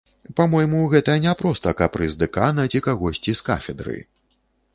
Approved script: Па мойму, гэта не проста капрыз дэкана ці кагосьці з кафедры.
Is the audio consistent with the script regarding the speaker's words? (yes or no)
yes